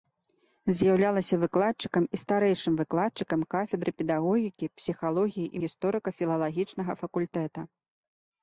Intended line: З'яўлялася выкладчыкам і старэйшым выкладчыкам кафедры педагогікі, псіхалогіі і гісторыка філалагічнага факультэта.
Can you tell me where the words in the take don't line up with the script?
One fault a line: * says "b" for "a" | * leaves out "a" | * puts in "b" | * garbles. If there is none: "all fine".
all fine